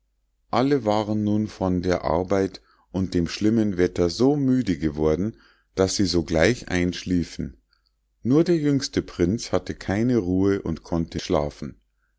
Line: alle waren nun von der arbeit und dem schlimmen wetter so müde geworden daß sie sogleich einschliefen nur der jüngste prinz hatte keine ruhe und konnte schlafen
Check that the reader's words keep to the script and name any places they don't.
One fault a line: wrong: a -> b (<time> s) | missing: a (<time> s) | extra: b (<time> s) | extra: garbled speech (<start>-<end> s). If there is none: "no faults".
no faults